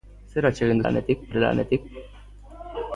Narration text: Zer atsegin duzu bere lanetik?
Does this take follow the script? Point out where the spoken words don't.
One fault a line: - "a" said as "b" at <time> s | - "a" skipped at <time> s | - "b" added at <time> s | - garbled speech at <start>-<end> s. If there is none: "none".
- "duzu" said as "lanetik" at 0.8 s